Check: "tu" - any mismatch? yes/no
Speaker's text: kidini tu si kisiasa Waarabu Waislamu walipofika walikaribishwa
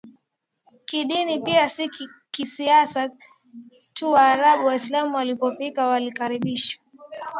yes